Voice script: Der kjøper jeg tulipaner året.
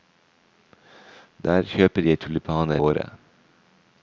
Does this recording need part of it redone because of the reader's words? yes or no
no